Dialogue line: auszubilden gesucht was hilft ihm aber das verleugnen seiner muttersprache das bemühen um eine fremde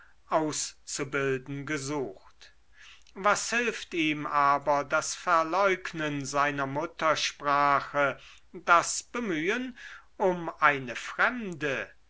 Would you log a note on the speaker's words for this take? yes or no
no